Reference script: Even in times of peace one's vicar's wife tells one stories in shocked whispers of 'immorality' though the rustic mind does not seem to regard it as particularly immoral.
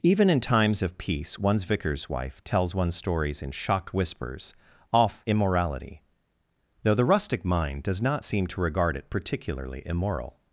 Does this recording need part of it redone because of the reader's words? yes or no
yes